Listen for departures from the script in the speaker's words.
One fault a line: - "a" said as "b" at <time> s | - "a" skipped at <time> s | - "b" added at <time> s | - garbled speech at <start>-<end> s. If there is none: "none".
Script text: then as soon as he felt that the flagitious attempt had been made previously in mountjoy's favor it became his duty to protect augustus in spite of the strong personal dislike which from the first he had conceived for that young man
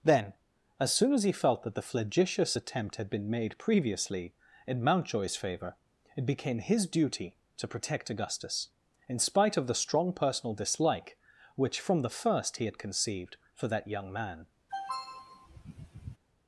none